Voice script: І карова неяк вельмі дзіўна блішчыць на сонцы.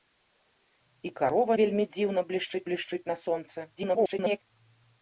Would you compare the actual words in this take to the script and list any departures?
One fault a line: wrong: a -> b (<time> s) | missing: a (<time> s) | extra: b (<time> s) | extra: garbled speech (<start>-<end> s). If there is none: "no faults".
missing: неяк (1.5 s)
extra: блішчыць (2.7 s)
extra: garbled speech (3.8-4.4 s)